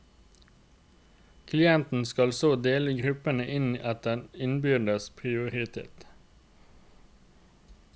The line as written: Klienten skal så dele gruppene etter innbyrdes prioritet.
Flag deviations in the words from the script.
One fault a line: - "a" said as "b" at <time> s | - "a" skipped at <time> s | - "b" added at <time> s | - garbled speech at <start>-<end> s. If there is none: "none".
- "inn" added at 3.6 s